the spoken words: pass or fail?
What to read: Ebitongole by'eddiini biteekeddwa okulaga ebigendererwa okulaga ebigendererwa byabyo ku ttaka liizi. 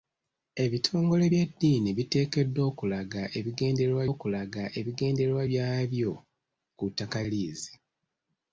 pass